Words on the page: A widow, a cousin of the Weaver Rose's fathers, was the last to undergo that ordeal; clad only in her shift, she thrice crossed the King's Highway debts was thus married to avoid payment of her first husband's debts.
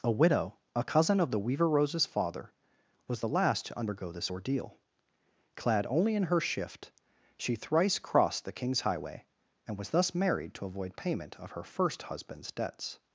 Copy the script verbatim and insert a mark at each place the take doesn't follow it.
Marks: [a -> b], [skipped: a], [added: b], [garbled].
A widow, a cousin of the Weaver Rose's [fathers, -> father] was the last to undergo [that -> this] ordeal; clad only in her shift, she thrice crossed the King's Highway [debts -> and] was thus married to avoid payment of her first husband's debts.